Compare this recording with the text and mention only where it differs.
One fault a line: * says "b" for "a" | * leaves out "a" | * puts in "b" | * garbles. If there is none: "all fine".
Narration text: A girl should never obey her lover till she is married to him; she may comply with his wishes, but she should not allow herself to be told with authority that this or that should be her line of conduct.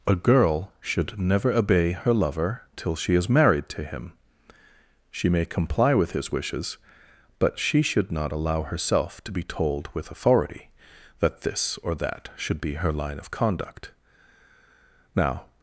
* puts in "Now"